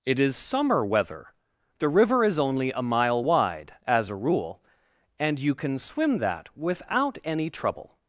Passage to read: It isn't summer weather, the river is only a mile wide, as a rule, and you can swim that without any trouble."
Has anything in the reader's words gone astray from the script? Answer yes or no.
yes